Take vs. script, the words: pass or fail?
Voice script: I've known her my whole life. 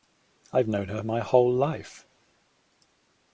pass